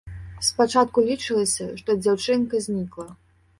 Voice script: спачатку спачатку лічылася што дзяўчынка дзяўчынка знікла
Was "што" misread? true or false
false